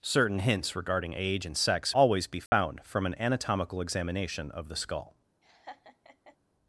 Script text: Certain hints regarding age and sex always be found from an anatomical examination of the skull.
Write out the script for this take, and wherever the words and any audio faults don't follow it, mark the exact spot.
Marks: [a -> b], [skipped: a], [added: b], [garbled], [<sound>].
Certain hints regarding age and sex always be found [dropout] from an anatomical examination of the skull. [laugh]